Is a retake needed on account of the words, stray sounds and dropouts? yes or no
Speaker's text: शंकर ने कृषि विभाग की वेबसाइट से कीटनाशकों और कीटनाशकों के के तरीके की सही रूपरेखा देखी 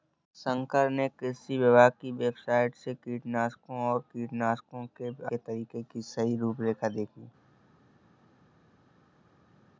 no